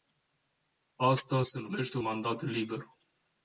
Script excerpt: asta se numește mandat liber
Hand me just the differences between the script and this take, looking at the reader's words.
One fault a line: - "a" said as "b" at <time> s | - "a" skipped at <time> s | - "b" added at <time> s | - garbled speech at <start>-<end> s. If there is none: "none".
none